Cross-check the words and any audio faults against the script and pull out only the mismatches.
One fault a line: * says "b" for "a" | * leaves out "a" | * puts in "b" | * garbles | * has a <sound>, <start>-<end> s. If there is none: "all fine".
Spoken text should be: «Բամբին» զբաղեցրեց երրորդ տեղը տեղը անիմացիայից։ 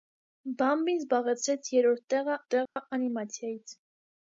* has a dropout, 2.7-2.8 s